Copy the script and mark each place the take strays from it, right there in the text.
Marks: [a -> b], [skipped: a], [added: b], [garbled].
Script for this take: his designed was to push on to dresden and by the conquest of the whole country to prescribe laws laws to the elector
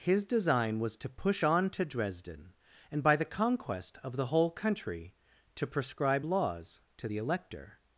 his [designed -> design] was to push on to dresden and by the conquest of the whole country to prescribe laws [skipped: laws] to the elector